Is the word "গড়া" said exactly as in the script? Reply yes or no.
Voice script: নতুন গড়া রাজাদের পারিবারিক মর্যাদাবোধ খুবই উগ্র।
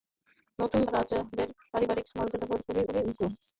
no